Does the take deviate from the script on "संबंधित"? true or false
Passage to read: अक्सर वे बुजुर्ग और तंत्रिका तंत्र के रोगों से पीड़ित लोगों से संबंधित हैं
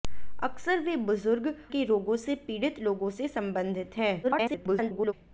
false